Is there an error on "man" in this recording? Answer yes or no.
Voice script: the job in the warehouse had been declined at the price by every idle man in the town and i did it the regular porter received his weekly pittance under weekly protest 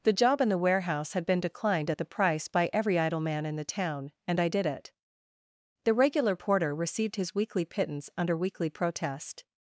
no